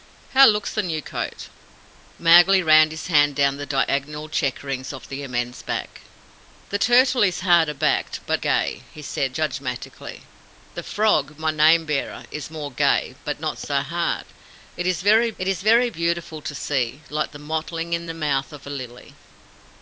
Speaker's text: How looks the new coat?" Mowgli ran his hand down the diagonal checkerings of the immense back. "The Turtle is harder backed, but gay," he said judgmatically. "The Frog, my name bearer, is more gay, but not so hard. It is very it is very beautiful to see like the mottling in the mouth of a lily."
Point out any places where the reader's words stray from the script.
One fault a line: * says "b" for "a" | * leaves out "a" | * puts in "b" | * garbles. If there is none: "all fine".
all fine